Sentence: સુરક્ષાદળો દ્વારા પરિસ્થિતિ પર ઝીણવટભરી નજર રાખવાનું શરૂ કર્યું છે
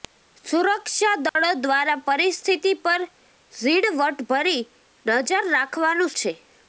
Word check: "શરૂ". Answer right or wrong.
wrong